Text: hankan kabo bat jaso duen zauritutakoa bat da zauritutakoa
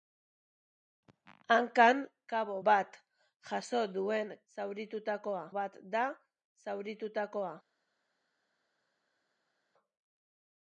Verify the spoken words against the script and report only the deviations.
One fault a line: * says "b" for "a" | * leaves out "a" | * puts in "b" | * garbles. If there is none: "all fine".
all fine